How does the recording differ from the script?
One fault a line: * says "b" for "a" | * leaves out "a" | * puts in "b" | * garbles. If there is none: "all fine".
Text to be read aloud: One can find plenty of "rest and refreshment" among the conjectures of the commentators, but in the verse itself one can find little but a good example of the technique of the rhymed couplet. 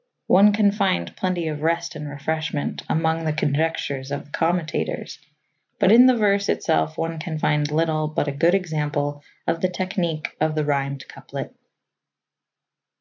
all fine